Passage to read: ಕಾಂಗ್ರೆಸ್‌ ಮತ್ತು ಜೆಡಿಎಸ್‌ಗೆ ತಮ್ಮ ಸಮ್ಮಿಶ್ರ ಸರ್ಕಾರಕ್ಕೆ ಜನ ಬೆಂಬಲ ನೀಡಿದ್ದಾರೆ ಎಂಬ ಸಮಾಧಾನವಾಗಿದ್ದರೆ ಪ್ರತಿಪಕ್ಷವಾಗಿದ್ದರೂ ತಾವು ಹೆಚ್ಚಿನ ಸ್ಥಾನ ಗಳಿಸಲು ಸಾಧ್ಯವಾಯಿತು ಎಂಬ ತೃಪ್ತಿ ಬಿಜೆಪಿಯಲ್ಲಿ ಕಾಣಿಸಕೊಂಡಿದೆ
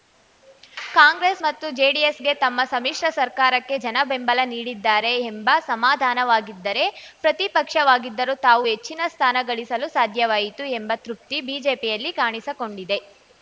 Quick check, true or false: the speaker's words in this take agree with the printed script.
true